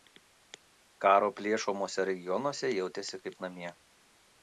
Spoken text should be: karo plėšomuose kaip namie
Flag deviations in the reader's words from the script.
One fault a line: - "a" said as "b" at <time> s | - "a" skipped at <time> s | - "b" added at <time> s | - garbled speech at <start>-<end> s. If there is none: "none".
- "regionuose jautėsi" added at 2.1 s